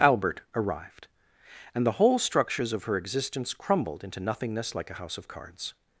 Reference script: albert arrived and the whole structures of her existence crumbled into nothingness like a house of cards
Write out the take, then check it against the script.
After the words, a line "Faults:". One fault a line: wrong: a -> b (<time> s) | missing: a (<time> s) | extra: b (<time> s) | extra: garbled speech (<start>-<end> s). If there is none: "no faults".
albert arrived and the whole structures of her existence crumbled into nothingness like a house of cards
Faults:
no faults